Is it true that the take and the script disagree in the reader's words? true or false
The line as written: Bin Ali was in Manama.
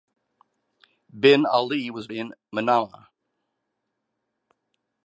false